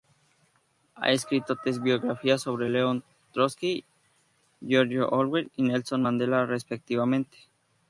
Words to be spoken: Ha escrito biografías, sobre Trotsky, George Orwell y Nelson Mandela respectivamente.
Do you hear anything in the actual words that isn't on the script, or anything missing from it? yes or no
yes